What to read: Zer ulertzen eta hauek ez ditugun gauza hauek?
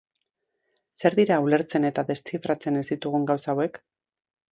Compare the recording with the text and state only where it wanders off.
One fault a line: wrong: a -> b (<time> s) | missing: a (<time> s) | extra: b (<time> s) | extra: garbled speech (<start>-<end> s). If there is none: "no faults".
extra: dira (1.2 s)
wrong: hauek -> deszifratzen (2.1 s)